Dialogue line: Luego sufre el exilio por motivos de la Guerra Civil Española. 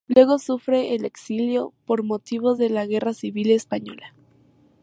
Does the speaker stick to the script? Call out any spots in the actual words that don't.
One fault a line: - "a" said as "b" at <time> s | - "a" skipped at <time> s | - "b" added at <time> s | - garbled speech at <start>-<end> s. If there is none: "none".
none